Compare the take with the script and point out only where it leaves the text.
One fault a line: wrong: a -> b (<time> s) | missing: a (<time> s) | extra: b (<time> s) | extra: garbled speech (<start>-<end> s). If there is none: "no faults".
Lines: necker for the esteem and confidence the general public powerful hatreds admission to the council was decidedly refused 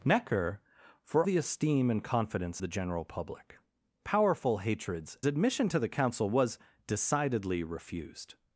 no faults